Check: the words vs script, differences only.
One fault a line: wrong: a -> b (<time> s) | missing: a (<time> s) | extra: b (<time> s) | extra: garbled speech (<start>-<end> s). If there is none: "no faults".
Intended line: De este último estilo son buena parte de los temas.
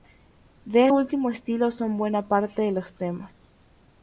missing: este (0.9 s)